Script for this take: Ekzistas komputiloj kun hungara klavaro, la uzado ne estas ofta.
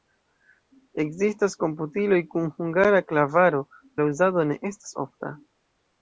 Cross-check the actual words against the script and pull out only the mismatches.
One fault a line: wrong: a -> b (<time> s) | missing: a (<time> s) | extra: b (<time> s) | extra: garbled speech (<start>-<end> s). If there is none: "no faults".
no faults